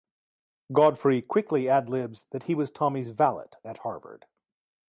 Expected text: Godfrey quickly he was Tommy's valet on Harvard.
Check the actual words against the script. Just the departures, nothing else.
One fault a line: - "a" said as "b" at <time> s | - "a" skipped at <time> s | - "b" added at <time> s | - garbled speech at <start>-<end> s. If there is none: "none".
- "ad libs that" added at 1.7 s
- "on" said as "at" at 3.6 s